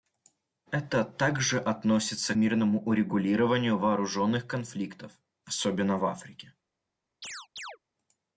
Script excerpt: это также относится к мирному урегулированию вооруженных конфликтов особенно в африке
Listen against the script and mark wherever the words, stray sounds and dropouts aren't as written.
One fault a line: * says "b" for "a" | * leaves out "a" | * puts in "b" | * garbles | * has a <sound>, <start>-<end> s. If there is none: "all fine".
* leaves out "к"
* has a chirp, 7.2-7.8 s